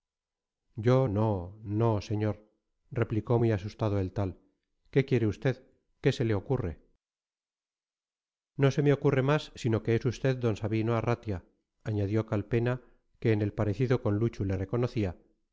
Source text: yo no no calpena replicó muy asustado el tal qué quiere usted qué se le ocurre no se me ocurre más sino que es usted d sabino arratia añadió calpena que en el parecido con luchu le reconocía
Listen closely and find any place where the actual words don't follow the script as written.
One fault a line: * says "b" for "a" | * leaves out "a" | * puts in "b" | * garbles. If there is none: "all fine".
* says "señor" for "calpena"